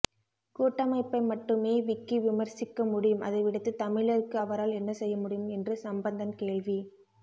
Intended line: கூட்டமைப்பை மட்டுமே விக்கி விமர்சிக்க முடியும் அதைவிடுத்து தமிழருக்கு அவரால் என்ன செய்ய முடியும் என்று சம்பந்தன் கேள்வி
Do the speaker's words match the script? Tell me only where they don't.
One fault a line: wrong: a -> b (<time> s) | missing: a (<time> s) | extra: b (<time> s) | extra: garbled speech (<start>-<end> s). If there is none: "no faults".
no faults